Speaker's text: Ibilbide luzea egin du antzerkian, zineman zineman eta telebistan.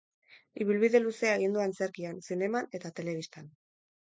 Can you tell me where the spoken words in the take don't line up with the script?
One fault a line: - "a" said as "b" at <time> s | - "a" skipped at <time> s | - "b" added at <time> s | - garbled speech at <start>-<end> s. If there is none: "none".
- "zineman" skipped at 2.7 s